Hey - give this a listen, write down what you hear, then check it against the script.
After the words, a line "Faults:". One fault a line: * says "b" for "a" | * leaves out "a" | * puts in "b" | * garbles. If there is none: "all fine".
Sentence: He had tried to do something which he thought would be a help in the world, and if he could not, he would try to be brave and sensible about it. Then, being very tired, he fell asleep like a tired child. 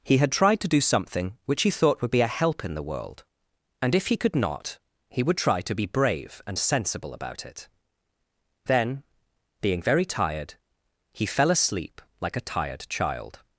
He had tried to do something which he thought would be a help in the world, and if he could not, he would try to be brave and sensible about it. Then, being very tired, he fell asleep like a tired child.
Faults:
all fine